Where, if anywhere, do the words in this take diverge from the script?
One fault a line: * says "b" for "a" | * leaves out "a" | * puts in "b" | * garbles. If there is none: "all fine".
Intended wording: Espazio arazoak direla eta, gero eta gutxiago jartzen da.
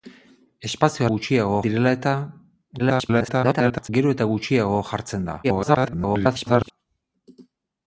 * says "gutxiago" for "arazoak"
* garbles
* garbles